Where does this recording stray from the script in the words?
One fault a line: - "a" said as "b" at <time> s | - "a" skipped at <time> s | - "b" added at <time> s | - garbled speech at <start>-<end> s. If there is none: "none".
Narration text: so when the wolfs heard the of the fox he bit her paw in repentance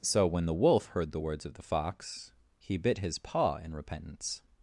- "wolfs" said as "wolf" at 0.5 s
- "words" added at 1.2 s
- "her" said as "his" at 3.0 s